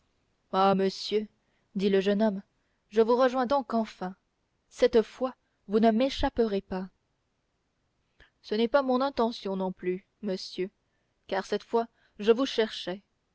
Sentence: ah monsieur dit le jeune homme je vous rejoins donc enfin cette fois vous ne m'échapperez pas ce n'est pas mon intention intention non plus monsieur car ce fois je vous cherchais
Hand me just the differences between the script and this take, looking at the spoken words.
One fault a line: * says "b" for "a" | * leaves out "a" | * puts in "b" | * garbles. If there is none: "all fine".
* leaves out "intention"
* says "cette" for "ce"